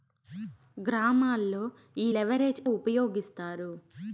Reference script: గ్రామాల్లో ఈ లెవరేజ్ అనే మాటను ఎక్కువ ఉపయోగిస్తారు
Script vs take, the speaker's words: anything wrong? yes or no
yes